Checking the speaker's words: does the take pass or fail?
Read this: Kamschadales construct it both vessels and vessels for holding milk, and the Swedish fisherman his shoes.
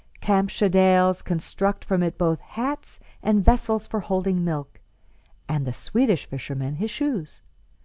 fail